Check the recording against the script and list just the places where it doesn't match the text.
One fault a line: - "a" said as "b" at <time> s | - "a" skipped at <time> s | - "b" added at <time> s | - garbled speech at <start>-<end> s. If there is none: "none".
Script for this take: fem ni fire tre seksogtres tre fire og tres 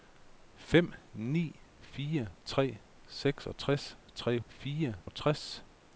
none